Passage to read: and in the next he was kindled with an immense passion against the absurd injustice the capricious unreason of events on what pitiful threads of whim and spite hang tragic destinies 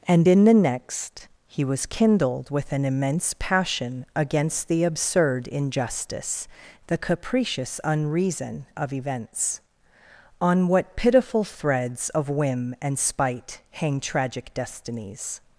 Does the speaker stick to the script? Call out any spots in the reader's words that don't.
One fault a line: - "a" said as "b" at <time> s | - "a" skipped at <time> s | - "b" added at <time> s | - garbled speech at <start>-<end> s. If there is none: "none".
none